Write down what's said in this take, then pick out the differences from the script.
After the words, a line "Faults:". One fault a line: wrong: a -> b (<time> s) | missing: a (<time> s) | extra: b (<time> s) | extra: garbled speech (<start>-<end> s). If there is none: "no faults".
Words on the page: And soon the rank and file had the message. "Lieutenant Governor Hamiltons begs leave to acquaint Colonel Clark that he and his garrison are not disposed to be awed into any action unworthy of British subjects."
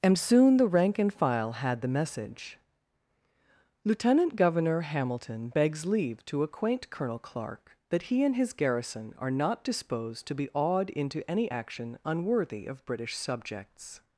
And soon the rank and file had the message. "Lieutenant Governor Hamilton begs leave to acquaint Colonel Clark that he and his garrison are not disposed to be awed into any action unworthy of British subjects."
Faults:
wrong: Hamiltons -> Hamilton (4.8 s)